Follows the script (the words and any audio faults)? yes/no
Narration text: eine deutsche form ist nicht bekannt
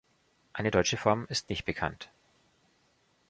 yes